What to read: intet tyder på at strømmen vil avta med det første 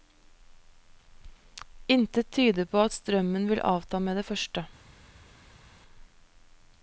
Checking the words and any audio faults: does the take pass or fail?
pass